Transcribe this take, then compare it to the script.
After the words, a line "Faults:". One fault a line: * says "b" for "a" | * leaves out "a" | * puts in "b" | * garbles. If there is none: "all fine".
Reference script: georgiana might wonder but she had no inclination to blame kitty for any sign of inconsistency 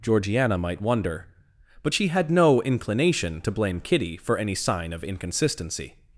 georgiana might wonder but she had no inclination to blame kitty for any sign of inconsistency
Faults:
all fine